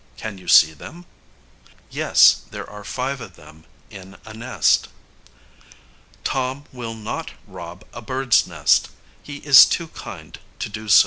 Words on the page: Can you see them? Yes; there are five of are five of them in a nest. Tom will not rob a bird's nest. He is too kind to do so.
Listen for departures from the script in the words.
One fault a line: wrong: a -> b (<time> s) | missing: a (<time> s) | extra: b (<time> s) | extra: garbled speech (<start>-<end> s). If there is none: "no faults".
missing: are five of (3.4 s)